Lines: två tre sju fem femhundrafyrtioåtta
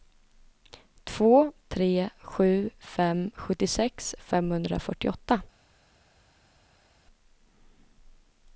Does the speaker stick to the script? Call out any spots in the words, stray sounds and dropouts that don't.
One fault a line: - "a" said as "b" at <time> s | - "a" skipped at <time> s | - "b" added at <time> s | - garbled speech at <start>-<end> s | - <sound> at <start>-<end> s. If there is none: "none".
- "sjuttiosex" added at 3.4 s